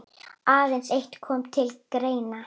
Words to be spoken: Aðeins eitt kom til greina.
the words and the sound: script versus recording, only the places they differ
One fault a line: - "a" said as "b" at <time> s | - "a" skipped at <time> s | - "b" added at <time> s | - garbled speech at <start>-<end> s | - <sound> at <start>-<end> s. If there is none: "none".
none